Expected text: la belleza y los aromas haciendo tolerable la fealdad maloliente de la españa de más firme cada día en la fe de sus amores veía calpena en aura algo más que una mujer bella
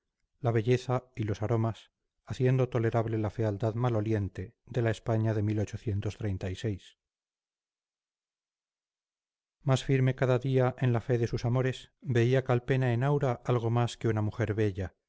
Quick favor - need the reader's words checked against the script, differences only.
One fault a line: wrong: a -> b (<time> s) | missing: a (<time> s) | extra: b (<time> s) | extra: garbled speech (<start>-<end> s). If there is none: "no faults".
no faults